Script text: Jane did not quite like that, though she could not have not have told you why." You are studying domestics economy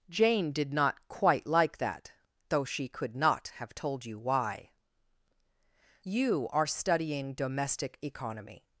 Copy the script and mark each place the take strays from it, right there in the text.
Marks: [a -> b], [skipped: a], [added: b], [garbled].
Jane did not quite like that, though she could not have [skipped: not have] told you why." You are studying [domestics -> domestic] economy